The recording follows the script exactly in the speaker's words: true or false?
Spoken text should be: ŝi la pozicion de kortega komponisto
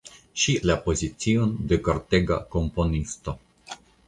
true